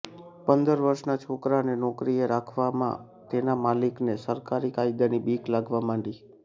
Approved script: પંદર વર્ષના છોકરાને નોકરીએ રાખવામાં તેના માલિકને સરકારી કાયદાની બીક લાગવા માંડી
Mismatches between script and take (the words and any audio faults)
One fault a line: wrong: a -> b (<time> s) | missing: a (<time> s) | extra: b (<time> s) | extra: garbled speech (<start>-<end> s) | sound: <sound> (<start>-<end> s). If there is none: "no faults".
no faults